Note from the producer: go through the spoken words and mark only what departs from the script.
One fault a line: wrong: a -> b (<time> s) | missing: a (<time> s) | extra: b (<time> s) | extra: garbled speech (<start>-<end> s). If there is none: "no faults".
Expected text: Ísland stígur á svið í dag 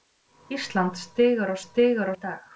wrong: svið -> stígur (1.6 s)